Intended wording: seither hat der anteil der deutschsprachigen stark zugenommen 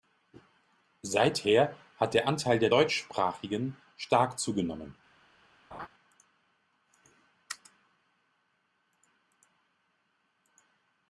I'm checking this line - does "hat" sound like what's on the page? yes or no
yes